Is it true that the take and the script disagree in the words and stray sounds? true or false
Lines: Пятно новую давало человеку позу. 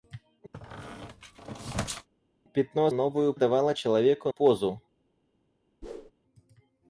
true